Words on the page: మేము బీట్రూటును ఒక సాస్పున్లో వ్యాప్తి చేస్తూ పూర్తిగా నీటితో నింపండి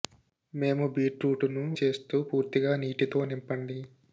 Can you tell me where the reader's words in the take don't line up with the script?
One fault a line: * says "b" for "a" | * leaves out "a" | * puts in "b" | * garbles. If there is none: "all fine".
* leaves out "ఒక సాస్పున్లో వ్యాప్తి"